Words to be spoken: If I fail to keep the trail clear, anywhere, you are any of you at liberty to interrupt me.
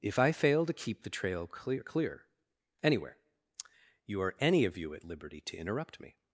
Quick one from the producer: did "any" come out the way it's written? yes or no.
yes